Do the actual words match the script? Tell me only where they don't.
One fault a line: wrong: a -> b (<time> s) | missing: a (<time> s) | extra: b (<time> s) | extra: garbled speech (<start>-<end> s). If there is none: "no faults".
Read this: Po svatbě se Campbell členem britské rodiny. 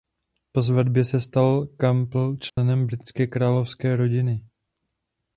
extra: stal (1.2 s)
extra: královské (3.3 s)